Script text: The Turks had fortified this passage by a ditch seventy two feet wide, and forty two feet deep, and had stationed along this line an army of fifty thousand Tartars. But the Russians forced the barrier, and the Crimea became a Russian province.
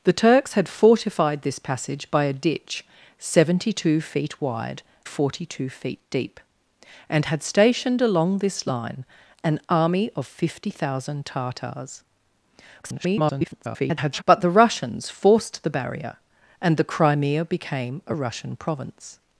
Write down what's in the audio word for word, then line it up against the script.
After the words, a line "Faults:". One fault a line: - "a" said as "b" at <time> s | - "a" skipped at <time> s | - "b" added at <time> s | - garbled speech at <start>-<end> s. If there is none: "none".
The Turks had fortified this passage by a ditch seventy two feet wide, forty two feet deep, and had stationed along this line an army of fifty thousand Tartars. [garbled] But the Russians forced the barrier, and the Crimea became a Russian province.
Faults:
- "and" skipped at 4.8 s
- garbled speech at 12.8-14.2 s